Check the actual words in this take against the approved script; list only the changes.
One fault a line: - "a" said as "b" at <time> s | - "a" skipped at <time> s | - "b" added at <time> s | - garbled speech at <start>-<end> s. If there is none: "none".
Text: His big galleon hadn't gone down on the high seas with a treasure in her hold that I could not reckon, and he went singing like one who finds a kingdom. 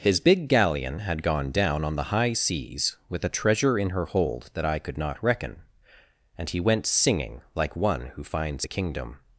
- "hadn't" said as "had" at 1.0 s